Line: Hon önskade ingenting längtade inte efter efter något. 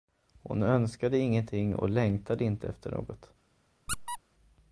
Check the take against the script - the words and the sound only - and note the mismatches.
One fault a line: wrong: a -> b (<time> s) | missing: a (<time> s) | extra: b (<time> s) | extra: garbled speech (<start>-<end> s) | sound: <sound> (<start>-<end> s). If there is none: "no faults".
extra: och (1.8 s)
missing: efter (2.9 s)
sound: squeak (3.9-4.2 s)